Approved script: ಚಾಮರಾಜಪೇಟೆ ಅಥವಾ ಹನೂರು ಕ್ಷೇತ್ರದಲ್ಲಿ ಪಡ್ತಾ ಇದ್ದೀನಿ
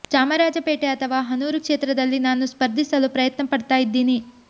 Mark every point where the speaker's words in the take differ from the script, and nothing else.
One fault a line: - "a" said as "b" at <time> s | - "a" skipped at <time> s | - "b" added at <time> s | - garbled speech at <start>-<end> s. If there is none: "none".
- "ನಾನು ಸ್ಪರ್ಧಿಸಲು ಪ್ರಯತ್ನ" added at 2.2 s